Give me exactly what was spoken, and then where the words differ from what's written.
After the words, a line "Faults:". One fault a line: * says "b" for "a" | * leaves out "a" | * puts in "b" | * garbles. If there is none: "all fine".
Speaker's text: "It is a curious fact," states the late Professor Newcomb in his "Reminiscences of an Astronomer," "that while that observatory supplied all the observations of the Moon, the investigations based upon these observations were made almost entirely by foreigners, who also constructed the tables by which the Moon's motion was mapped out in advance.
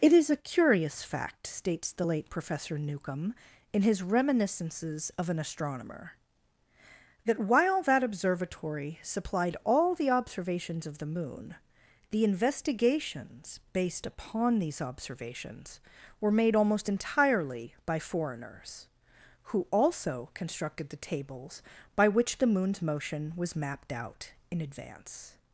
"It is a curious fact," states the late Professor Newcomb in his "Reminiscences of an Astronomer," "that while that observatory supplied all the observations of the Moon, the investigations based upon these observations were made almost entirely by foreigners, who also constructed the tables by which the Moon's motion was mapped out in advance.
Faults:
all fine